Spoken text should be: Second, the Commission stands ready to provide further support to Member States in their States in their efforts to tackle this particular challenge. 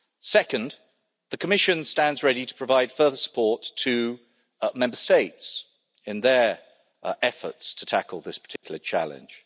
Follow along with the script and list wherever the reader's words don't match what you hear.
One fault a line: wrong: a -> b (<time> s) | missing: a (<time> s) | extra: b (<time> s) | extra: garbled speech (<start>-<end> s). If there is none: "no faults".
missing: States in their (6.6 s)